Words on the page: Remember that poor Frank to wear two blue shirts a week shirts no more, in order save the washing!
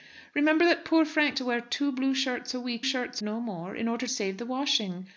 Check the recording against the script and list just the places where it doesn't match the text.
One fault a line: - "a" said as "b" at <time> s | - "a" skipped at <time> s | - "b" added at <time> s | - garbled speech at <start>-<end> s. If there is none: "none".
none